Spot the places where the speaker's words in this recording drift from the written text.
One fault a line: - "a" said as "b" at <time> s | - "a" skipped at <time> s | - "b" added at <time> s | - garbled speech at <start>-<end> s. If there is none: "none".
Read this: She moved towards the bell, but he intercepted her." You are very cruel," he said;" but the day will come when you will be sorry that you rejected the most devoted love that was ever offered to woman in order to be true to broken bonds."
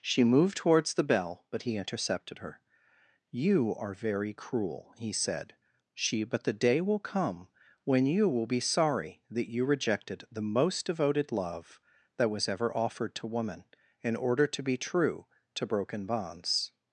- "she" added at 5.9 s